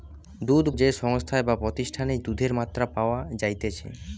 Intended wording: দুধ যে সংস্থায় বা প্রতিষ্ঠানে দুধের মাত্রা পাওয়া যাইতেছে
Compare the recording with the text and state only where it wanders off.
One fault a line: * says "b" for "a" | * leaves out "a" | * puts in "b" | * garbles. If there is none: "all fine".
all fine